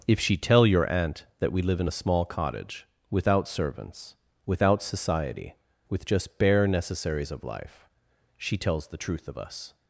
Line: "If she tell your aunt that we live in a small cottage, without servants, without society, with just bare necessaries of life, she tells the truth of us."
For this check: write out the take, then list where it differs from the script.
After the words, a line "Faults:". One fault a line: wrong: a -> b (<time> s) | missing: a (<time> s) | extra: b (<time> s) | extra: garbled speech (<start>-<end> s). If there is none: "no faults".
"If she tell your aunt that we live in a small cottage, without servants, without society, with just bare necessaries of life, she tells the truth of us."
Faults:
no faults